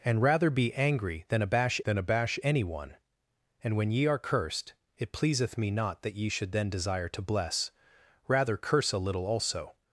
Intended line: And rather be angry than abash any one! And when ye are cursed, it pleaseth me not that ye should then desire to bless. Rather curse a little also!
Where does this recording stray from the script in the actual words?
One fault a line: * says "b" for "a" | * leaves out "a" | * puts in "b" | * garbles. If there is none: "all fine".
* puts in "than abash"